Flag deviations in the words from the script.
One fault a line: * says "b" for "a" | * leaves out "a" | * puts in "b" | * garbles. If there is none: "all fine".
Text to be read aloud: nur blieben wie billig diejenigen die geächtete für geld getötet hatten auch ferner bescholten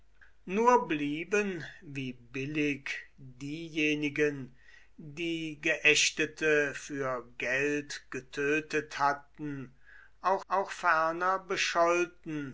* puts in "auch"